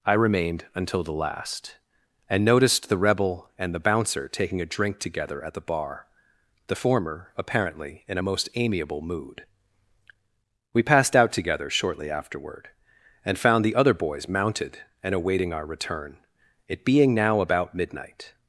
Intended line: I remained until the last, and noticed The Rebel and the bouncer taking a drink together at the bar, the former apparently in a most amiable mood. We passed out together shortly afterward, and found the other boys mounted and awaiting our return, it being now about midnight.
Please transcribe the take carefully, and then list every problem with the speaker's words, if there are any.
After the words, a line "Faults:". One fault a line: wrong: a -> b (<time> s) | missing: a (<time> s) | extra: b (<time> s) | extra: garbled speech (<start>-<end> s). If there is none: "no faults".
I remained until the last, and noticed The Rebel and the bouncer taking a drink together at the bar, the former apparently in a most amiable mood. We passed out together shortly afterward, and found the other boys mounted and awaiting our return, it being now about midnight.
Faults:
no faults